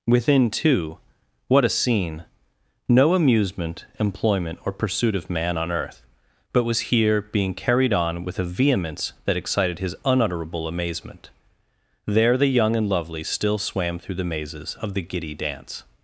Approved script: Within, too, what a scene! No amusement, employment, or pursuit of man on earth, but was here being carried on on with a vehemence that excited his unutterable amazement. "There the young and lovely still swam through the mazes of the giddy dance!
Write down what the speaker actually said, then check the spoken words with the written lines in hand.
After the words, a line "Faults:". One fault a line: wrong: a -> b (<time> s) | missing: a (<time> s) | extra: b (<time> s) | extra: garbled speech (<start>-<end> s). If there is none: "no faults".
Within, too, what a scene! No amusement, employment, or pursuit of man on earth, but was here being carried on with a vehemence that excited his unutterable amazement. "There the young and lovely still swam through the mazes of the giddy dance!
Faults:
missing: on (8.2 s)